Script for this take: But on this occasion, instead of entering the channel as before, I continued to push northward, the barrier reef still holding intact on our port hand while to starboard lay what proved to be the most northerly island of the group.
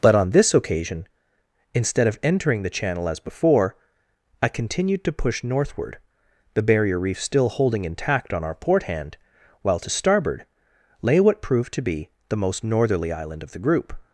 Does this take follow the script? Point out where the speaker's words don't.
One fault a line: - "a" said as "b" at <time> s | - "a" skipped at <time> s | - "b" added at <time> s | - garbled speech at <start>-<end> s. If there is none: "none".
none